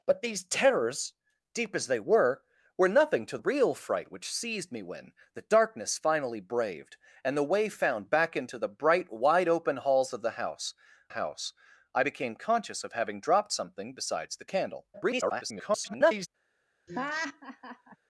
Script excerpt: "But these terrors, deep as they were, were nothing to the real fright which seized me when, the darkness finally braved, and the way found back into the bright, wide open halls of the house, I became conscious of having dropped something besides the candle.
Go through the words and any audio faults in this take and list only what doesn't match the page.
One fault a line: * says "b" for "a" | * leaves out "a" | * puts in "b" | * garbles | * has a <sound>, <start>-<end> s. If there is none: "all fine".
* leaves out "the"
* puts in "house"
* garbles
* has a laugh, 16.9-18.0 s